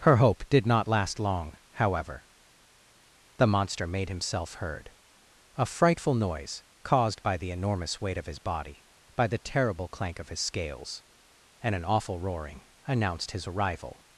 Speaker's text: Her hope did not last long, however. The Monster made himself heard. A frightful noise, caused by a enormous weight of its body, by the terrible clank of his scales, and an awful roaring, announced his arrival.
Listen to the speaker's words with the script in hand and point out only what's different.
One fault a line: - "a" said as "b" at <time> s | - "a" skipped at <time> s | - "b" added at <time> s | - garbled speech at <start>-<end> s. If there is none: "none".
- "a" said as "the" at 7.3 s
- "its" said as "his" at 8.2 s